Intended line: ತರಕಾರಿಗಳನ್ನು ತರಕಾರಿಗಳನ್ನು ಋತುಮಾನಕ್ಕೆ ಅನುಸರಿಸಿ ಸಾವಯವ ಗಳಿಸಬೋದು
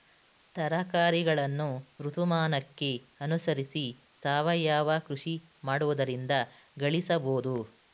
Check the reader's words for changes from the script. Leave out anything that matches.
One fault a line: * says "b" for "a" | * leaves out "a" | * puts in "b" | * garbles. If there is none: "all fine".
* leaves out "ತರಕಾರಿಗಳನ್ನು"
* puts in "ಕೃಷಿ ಮಾಡುವುದರಿಂದ"